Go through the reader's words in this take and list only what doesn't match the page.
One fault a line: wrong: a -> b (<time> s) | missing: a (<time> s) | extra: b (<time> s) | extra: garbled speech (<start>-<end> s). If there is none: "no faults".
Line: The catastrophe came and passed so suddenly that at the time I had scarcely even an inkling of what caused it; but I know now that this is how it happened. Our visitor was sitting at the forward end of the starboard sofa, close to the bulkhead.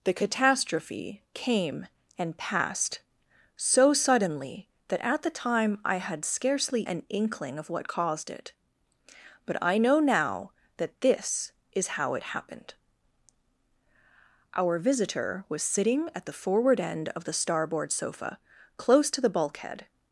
missing: even (6.8 s)